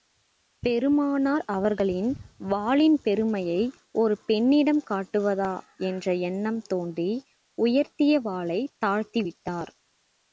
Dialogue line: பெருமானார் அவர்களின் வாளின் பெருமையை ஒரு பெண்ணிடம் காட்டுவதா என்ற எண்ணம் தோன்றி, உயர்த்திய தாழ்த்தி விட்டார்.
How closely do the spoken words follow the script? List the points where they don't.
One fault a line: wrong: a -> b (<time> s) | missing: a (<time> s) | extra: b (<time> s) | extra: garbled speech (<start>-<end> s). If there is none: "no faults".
extra: வாளைத் (8.2 s)